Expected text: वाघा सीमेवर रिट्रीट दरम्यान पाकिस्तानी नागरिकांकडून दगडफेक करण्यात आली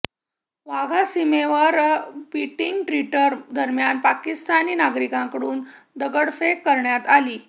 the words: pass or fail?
fail